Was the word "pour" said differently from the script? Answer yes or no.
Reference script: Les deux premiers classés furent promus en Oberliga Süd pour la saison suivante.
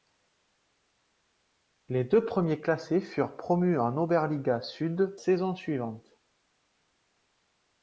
yes